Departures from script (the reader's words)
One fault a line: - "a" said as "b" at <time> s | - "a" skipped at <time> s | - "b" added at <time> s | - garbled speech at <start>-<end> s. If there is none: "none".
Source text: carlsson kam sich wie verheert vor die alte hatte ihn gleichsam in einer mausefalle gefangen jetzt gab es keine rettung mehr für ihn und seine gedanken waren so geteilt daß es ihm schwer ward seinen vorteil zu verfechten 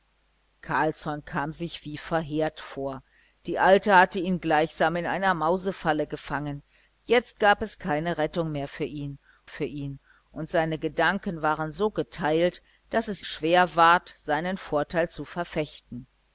- "für ihn" added at 9.5 s
- "ihm" skipped at 13.2 s